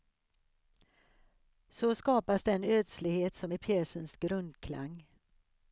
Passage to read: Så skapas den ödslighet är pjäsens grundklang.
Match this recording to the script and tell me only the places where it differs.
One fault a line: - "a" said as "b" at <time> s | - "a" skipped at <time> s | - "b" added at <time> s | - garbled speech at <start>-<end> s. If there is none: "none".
- "som" added at 3.4 s